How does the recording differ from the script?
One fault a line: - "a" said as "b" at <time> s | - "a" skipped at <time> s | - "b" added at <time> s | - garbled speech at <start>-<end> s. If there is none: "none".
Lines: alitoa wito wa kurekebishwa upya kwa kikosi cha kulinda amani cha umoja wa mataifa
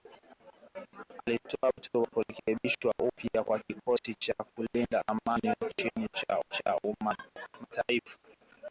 - "cha" added at 6.5 s